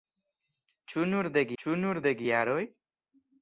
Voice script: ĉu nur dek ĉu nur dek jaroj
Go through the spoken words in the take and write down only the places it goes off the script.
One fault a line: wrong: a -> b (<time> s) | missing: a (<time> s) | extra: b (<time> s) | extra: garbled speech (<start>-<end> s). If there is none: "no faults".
no faults